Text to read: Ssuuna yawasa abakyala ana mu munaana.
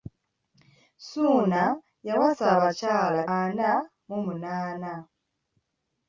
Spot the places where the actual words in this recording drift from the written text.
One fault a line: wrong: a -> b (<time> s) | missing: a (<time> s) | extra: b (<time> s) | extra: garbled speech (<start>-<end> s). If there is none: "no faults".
no faults